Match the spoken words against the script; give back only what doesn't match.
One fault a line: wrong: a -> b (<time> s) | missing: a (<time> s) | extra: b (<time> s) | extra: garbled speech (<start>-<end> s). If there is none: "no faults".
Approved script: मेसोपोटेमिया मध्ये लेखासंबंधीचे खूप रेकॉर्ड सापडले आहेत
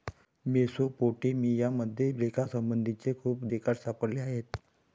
no faults